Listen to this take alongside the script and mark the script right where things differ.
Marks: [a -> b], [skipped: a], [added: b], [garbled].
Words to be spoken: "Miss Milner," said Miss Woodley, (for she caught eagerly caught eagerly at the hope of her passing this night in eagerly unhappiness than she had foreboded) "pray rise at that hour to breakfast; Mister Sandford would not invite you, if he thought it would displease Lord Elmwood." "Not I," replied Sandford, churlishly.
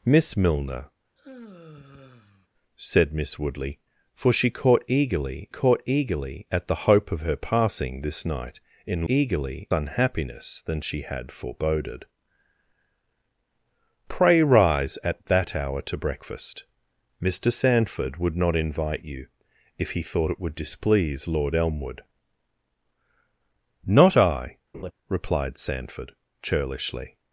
"Miss Milner," said Miss Woodley, (for she caught eagerly caught eagerly at the hope of her passing this night in eagerly unhappiness than she had foreboded) "pray rise at that hour to breakfast; Mister Sandford would not invite you, if he thought it would displease Lord Elmwood." "Not I," replied Sandford, churlishly.